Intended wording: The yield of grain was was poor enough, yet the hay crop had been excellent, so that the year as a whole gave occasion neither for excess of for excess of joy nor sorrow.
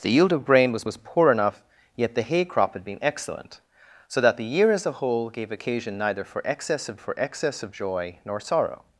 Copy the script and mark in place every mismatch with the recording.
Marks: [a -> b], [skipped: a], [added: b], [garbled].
The yield of grain was was poor enough, yet the hay crop had been excellent, so that the year as a whole gave occasion neither for excess of for excess of joy nor sorrow.